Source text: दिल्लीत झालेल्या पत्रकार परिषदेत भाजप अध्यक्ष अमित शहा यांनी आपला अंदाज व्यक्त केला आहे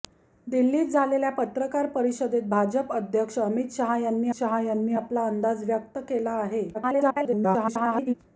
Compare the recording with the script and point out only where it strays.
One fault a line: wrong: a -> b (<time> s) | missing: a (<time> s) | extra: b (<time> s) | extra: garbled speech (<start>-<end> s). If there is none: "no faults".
extra: शहा यांनी (4.3 s)
extra: garbled speech (6.7-8.1 s)